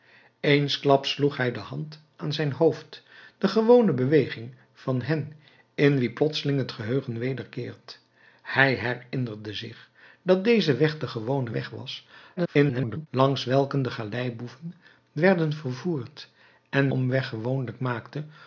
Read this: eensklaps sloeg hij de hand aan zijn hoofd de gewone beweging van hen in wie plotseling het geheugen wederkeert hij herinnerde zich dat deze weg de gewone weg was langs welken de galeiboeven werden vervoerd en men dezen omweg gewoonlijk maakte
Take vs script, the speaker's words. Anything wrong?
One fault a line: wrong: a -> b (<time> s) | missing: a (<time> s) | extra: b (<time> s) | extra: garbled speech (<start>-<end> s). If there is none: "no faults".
extra: garbled speech (12.4-13.1 s)
missing: men dezen (16.9 s)